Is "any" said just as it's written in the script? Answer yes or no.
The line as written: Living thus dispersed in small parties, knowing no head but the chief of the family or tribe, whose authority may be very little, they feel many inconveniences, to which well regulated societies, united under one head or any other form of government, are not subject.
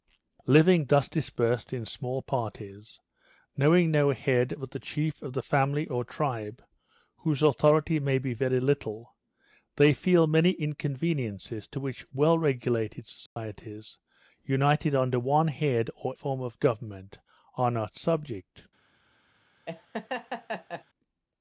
no